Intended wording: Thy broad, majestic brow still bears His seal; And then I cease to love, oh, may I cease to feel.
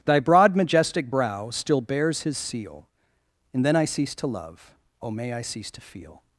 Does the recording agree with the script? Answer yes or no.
yes